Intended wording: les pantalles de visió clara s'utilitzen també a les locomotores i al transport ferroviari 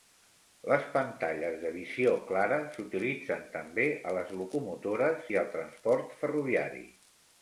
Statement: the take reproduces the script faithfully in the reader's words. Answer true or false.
true